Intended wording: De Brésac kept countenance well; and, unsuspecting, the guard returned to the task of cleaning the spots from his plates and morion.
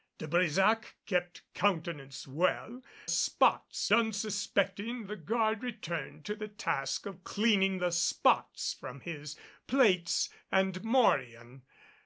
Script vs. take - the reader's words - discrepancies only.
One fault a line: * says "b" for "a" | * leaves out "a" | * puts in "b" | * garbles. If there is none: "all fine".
* says "spots" for "and"